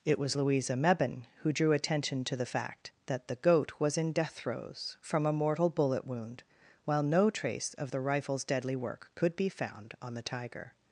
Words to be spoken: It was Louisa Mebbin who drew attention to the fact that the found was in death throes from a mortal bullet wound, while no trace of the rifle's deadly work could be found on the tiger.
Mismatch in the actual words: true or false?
true